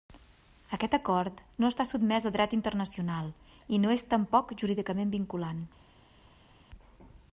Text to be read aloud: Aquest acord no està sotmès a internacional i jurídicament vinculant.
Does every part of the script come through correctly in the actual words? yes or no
no